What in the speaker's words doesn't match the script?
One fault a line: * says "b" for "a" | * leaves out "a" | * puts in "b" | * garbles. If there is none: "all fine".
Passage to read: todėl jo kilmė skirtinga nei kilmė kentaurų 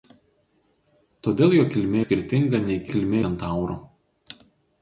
all fine